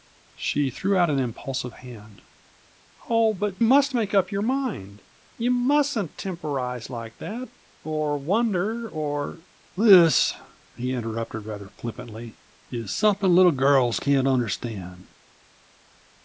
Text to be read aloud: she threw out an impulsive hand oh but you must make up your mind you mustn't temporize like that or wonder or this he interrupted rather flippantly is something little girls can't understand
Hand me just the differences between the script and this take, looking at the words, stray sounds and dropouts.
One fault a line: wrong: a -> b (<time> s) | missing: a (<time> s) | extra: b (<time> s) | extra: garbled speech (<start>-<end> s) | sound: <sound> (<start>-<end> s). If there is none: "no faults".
missing: you (3.6 s)